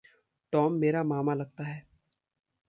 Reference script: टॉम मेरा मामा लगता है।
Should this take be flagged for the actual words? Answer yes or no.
no